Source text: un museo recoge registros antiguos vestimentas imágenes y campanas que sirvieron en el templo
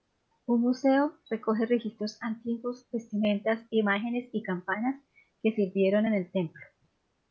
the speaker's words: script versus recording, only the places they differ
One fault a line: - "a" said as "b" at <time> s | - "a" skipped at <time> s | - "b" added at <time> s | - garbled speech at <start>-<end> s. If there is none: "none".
none